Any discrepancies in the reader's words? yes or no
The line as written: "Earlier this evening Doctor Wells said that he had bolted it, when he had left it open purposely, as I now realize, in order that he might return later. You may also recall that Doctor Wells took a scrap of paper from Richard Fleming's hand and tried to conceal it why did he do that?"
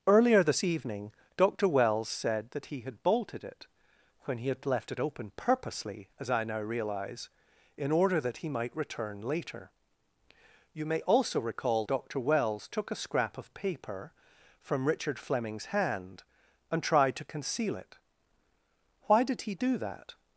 yes